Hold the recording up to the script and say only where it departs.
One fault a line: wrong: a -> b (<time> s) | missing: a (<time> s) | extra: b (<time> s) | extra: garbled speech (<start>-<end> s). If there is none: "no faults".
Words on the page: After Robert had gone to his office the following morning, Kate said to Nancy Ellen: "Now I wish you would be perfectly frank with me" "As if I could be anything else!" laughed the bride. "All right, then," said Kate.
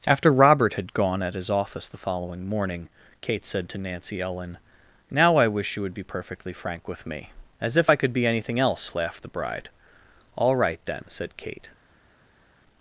wrong: to -> at (1.2 s)